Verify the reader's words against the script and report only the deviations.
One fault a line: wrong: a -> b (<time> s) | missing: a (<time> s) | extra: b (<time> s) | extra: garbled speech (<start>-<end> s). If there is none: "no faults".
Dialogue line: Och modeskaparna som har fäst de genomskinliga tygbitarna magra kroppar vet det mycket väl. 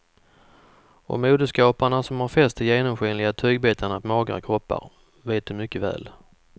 no faults